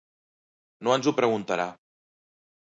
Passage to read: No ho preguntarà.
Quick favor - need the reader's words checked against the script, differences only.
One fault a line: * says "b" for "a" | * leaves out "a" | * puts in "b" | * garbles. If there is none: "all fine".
* puts in "ens"